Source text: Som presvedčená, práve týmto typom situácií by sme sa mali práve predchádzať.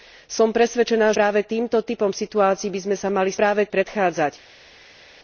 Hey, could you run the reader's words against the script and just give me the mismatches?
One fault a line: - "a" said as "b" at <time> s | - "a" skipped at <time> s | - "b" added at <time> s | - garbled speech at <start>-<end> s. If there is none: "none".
none